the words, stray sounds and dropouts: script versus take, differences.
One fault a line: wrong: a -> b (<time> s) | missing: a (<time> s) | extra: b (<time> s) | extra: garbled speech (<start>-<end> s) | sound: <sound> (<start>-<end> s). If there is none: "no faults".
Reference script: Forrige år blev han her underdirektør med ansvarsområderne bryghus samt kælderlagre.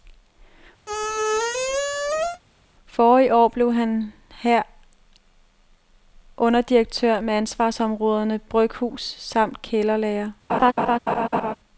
sound: squeak (0.9-2.4 s)
sound: laugh (10.5-11.6 s)